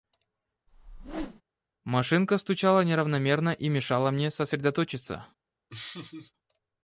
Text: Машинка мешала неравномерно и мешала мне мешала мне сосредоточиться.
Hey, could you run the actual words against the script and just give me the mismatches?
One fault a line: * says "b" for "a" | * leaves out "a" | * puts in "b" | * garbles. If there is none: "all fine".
* says "стучала" for "мешала"
* leaves out "мешала мне"